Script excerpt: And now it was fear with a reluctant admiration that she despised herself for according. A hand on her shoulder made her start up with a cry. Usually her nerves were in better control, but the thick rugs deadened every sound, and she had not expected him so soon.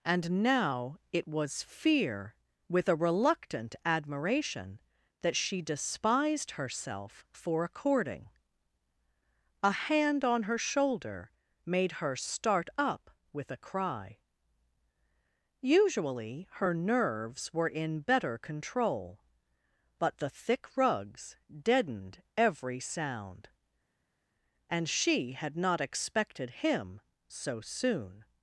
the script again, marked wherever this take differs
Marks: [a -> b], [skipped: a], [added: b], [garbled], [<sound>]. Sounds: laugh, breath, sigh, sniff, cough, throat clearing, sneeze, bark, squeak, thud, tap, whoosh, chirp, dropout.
And now it was fear with a reluctant admiration that she despised herself for according. A hand on her shoulder made her start up with a cry. Usually her nerves were in better control, but the thick rugs deadened every sound, and she had not expected him so soon.